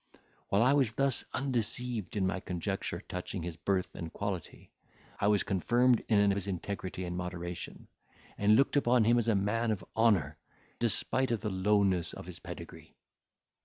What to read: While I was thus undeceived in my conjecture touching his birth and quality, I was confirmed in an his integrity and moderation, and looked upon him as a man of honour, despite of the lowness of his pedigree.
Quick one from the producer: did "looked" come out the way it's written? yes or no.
yes